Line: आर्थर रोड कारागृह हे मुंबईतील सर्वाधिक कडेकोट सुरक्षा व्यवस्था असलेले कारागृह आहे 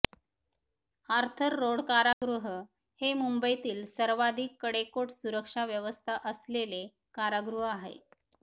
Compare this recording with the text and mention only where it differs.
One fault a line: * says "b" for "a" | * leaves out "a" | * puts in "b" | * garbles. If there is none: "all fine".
all fine